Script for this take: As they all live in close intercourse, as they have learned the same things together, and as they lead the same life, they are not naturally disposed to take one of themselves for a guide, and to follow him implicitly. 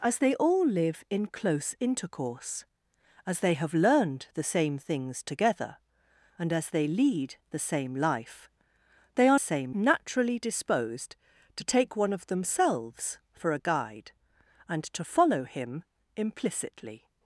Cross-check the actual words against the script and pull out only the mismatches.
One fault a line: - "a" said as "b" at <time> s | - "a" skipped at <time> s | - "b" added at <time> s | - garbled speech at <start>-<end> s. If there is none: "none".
- "not" said as "same" at 9.4 s